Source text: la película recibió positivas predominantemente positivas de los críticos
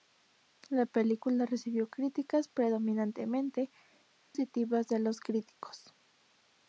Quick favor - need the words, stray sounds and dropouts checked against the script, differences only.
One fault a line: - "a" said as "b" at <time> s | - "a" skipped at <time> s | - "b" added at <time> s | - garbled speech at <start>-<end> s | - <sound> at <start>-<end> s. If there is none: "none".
- "positivas" said as "críticas" at 1.9 s
- dropout at 4.2-4.3 s